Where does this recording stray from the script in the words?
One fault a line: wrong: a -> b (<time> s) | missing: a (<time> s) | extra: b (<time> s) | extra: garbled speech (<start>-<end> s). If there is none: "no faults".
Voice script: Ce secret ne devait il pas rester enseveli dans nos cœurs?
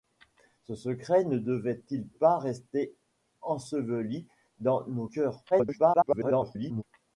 extra: garbled speech (5.5-6.8 s)